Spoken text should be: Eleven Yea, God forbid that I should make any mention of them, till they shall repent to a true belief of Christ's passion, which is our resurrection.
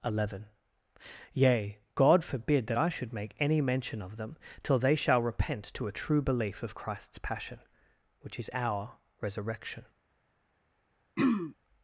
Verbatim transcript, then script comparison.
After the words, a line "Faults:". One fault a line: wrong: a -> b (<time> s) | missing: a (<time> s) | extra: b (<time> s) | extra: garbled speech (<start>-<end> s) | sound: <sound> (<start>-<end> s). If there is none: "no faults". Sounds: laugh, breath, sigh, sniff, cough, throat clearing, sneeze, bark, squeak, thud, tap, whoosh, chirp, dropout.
Eleven Yea, God forbid that I should make any mention of them, till they shall repent to a true belief of Christ's passion, which is our resurrection.
Faults:
sound: throat clearing (11.2-11.5 s)